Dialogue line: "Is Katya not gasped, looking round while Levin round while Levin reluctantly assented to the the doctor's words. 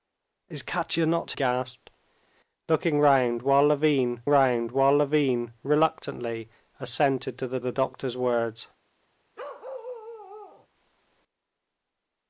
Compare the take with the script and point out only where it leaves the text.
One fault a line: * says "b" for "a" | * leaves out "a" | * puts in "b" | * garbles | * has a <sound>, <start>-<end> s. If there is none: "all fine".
* has a bark, 9.4-10.7 s